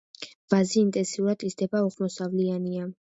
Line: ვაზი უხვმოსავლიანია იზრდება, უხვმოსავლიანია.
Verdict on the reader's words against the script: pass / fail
fail